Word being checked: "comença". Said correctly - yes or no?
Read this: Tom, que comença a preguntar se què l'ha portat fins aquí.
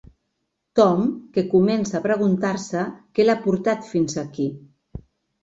yes